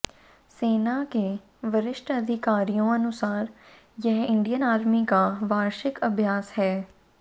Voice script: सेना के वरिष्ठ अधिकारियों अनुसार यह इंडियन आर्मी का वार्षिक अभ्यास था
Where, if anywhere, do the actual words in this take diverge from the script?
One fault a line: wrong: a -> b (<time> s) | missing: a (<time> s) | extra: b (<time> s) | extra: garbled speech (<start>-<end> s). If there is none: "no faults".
wrong: था -> है (6.6 s)